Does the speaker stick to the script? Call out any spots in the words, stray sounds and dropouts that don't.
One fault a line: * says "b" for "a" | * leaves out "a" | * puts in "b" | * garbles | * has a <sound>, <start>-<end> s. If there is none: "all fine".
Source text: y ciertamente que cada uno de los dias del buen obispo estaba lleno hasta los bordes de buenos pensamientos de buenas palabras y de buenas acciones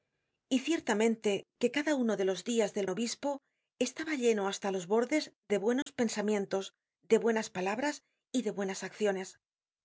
* leaves out "buen"
* has a dropout, 5.8-5.9 s